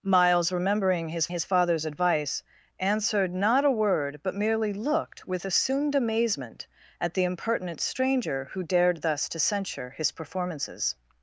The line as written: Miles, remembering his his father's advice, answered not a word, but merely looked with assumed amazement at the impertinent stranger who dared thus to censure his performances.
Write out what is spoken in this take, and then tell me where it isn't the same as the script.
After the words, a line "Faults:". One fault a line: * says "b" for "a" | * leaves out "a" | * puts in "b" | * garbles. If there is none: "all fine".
Miles, remembering his his father's advice, answered not a word, but merely looked with assumed amazement at the impertinent stranger who dared thus to censure his performances.
Faults:
all fine